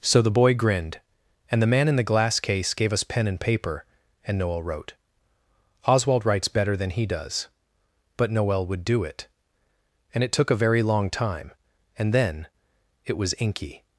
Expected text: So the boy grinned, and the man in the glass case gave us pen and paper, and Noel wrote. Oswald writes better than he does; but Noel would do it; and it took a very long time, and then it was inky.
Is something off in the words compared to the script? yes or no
no